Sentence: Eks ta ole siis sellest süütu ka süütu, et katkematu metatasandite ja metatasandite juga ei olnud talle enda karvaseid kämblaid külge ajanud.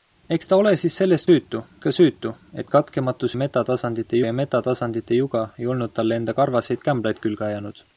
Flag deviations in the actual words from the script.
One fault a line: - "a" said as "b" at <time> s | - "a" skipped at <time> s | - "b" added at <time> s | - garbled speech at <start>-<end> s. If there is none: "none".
none